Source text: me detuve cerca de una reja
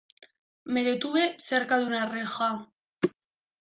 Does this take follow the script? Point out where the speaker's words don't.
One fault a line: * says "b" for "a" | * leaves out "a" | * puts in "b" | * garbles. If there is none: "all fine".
all fine